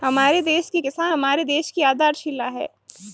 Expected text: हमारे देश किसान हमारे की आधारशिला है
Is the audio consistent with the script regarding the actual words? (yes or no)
no